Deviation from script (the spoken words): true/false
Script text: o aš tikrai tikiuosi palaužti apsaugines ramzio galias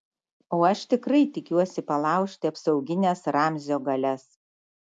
false